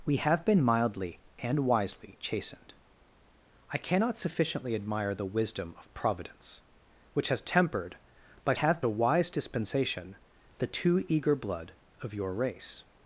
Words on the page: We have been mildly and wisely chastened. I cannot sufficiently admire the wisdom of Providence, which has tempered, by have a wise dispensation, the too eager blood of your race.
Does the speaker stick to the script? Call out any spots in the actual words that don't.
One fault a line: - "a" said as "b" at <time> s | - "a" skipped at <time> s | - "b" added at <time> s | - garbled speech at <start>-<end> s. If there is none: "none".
none